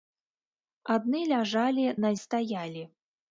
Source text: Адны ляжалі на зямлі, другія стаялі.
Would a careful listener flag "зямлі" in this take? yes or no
yes